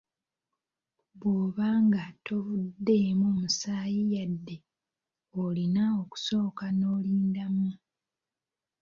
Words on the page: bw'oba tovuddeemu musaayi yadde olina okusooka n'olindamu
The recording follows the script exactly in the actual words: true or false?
false